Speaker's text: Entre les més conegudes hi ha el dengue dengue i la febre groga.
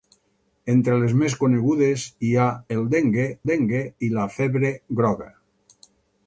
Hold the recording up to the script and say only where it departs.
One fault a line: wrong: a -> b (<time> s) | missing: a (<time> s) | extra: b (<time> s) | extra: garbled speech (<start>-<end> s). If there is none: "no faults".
no faults